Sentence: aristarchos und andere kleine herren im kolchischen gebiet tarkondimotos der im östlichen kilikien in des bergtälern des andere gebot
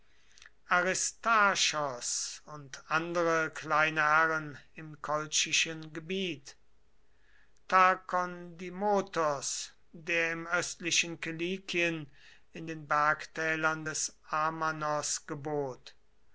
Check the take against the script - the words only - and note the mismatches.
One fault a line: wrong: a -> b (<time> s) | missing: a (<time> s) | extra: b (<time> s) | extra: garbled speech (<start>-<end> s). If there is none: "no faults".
wrong: des -> den (12.6 s)
wrong: andere -> amanos (14.3 s)